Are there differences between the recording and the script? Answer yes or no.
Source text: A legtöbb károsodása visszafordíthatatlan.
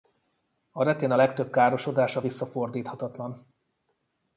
yes